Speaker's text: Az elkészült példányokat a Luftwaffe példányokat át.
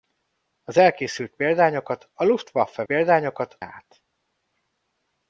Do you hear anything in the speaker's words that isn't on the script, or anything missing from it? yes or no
no